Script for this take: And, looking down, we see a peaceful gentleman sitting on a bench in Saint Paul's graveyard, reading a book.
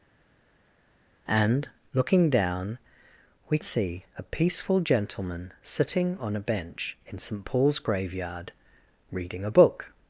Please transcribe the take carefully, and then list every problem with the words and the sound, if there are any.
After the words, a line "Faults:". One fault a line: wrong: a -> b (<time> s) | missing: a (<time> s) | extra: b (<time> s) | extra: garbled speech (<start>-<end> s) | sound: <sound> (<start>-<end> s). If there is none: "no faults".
And, looking down, we see a peaceful gentleman sitting on a bench in Saint Paul's graveyard, reading a book.
Faults:
no faults